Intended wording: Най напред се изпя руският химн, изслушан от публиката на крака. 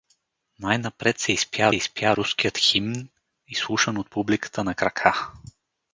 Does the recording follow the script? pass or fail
fail